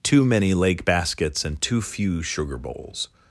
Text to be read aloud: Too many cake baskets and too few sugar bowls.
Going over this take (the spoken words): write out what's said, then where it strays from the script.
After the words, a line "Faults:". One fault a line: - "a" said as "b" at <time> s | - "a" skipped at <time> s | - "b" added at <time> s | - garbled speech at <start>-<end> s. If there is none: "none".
Too many lake baskets and too few sugar bowls.
Faults:
- "cake" said as "lake" at 0.5 s